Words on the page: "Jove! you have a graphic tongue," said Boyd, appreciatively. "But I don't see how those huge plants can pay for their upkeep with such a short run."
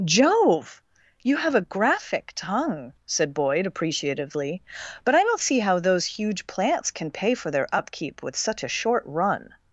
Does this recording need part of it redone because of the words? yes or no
no